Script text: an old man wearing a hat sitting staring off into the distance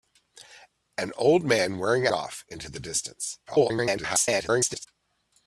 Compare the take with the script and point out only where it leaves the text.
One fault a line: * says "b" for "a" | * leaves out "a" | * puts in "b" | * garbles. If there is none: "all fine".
* leaves out "hat sitting staring"
* garbles